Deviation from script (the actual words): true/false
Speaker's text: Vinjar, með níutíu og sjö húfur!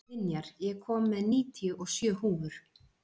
true